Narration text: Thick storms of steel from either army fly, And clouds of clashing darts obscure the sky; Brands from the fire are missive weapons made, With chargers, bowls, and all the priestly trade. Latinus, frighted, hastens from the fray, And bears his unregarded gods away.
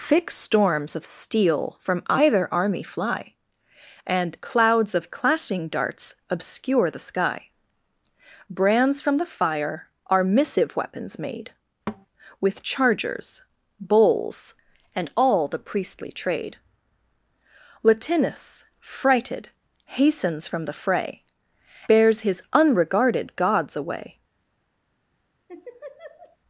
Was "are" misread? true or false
false